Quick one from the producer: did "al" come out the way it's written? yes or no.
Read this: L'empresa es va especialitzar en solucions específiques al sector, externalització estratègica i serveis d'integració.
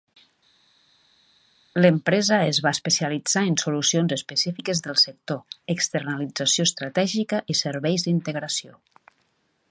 no